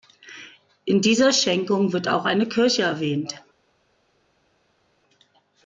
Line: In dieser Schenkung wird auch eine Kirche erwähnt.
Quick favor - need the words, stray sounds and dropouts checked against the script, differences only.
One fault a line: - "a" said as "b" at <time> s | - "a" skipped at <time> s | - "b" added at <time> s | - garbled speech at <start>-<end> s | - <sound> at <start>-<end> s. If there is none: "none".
none